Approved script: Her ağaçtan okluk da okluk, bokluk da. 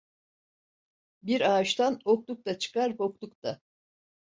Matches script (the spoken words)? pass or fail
fail